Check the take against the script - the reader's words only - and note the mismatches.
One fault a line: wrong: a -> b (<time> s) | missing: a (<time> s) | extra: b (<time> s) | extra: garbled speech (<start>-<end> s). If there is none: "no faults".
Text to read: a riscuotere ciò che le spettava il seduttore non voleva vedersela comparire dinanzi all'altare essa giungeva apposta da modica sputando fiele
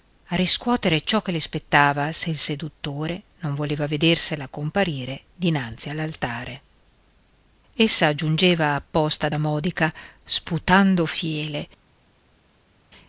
extra: se (2.1 s)